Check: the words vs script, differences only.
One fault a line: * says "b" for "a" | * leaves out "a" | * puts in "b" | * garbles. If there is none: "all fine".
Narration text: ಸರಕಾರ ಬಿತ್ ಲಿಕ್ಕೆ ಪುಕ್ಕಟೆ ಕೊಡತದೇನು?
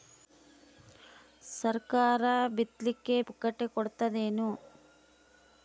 all fine